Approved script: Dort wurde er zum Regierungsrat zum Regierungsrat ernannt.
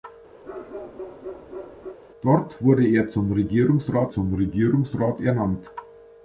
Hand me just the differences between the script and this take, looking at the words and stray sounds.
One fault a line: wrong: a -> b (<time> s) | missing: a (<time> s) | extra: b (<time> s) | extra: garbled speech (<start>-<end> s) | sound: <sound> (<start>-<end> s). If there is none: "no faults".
sound: bark (0.4-2.0 s)